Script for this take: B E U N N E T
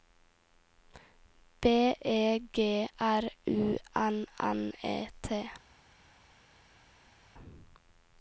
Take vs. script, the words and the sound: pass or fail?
fail